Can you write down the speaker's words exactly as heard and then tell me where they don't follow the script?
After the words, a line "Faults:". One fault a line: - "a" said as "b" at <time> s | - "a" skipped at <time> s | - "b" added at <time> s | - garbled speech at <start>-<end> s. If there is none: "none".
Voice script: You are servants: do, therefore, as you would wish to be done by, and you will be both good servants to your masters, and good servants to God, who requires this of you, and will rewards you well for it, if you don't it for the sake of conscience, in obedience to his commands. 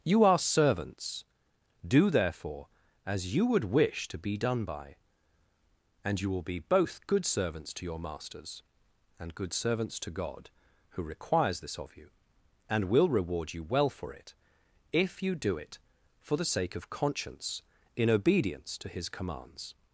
You are servants: do, therefore, as you would wish to be done by, and you will be both good servants to your masters, and good servants to God, who requires this of you, and will reward you well for it, if you do it for the sake of conscience, in obedience to his commands.
Faults:
- "rewards" said as "reward" at 13.1 s
- "don't" said as "do" at 15.3 s